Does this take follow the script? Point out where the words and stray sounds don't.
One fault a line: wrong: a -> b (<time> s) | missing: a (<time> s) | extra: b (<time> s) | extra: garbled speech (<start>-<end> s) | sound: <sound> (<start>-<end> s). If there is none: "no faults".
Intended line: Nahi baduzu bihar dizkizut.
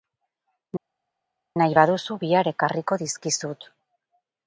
extra: ekarriko (2.5 s)